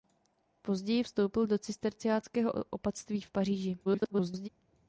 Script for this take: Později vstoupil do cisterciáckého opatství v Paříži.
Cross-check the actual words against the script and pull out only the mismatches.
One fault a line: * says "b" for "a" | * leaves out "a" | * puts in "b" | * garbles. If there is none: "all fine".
* garbles